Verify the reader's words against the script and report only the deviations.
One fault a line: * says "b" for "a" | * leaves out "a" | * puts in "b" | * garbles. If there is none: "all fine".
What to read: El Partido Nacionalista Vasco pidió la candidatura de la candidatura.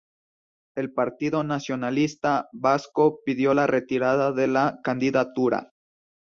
* says "retirada" for "candidatura"